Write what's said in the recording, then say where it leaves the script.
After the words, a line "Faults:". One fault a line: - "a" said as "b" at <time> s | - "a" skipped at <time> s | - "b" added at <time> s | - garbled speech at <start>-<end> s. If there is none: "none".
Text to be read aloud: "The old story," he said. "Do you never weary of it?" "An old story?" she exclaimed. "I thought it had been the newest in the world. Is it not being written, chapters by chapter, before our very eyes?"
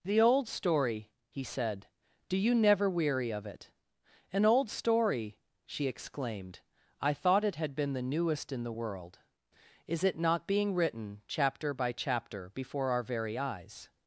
"The old story," he said. "Do you never weary of it?" "An old story?" she exclaimed. "I thought it had been the newest in the world. Is it not being written, chapter by chapter, before our very eyes?"
Faults:
- "chapters" said as "chapter" at 11.3 s